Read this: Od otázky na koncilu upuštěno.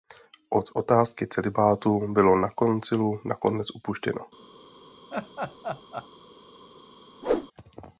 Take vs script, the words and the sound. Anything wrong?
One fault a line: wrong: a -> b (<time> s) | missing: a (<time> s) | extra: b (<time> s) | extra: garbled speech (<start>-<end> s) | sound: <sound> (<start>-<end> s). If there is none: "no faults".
extra: celibátu bylo (1.3 s)
extra: nakonec (3.2 s)
sound: laugh (5.1-6.1 s)
sound: whoosh (7.2-7.5 s)